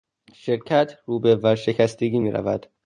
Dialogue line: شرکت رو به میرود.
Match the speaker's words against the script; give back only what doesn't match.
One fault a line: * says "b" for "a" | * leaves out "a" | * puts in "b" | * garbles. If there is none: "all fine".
* puts in "ورشکستگی"